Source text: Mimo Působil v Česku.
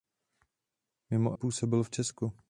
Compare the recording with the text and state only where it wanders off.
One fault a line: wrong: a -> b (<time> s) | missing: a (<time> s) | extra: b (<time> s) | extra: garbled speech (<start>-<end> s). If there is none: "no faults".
no faults